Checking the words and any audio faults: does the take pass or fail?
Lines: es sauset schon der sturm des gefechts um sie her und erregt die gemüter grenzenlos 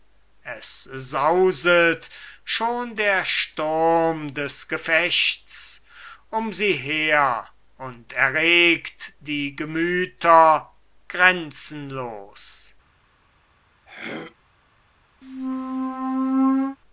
fail